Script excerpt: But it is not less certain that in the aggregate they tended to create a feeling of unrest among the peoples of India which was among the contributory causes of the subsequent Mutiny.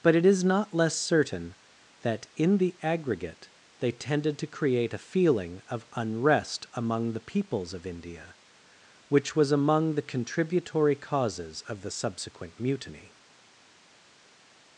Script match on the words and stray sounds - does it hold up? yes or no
yes